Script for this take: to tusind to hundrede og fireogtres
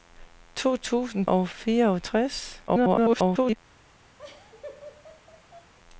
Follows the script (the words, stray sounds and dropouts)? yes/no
no